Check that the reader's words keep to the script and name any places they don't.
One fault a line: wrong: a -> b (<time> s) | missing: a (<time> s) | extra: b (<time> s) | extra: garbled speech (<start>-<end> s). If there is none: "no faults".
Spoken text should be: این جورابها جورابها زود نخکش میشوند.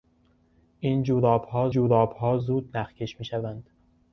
no faults